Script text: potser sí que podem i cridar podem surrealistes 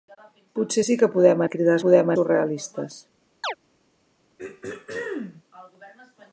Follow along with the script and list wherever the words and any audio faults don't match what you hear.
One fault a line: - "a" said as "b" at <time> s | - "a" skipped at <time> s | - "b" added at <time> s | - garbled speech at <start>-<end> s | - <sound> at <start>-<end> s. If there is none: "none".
- chirp at 3.4-3.5 s
- throat clearing at 4.4-5.4 s